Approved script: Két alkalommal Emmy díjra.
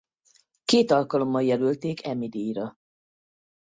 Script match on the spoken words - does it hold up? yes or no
no